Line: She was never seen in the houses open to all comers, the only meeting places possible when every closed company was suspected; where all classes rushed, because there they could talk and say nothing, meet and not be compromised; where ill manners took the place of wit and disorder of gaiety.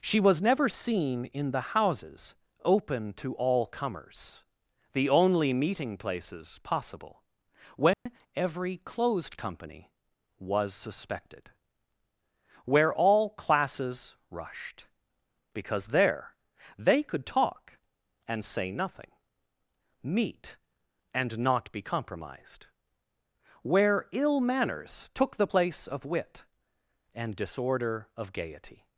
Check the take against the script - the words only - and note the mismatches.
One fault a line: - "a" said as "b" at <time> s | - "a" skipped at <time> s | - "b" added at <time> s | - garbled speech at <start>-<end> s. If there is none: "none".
none